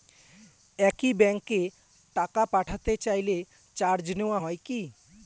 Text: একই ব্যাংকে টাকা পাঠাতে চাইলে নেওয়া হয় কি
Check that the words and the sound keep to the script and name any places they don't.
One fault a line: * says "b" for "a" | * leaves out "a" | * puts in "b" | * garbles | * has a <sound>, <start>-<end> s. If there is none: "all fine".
* puts in "চার্জ"